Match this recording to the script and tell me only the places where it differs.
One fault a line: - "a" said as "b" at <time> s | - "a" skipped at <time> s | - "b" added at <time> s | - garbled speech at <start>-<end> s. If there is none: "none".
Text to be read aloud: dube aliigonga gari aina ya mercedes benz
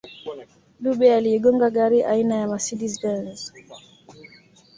none